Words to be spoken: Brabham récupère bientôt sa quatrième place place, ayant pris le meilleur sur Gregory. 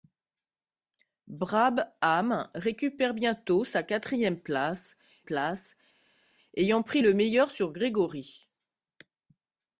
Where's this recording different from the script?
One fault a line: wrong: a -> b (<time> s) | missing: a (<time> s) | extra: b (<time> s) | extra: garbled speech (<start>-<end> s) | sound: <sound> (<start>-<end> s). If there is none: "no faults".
no faults